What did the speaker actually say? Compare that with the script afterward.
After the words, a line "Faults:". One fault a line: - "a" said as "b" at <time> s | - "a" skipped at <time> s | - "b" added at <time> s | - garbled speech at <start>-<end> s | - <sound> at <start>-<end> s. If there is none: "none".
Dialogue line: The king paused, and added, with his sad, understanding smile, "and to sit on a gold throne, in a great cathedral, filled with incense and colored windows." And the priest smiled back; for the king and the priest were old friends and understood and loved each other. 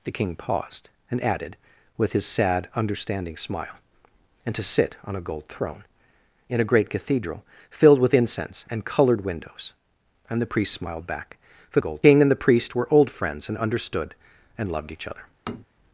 The king paused, and added, with his sad, understanding smile, "and to sit on a gold throne, in a great cathedral, filled with incense and colored windows." And the priest smiled back; for gold king and the priest were old friends and understood and loved each other.
Faults:
- "the" said as "gold" at 11.8 s
- tap at 15.5-15.7 s